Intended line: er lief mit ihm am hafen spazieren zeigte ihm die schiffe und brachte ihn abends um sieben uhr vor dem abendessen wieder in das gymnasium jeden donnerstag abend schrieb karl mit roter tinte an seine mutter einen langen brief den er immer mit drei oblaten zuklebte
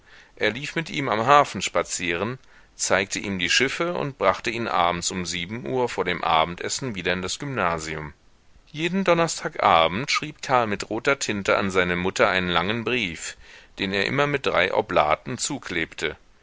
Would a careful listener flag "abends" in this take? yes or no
no